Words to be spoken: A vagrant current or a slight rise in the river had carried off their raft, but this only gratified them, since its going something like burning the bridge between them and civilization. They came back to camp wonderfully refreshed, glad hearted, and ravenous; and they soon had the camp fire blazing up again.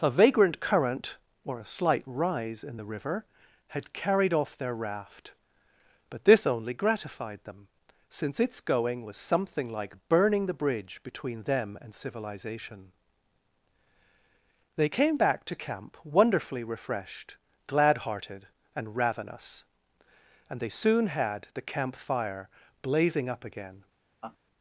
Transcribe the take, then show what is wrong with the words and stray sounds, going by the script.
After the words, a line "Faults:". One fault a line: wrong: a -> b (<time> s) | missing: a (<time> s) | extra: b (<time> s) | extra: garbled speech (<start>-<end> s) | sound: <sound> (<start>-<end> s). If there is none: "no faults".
A vagrant current or a slight rise in the river had carried off their raft, but this only gratified them, since its going was something like burning the bridge between them and civilization. They came back to camp wonderfully refreshed, glad hearted, and ravenous; and they soon had the camp fire blazing up again.
Faults:
extra: was (9.0 s)
sound: laugh (24.2-24.4 s)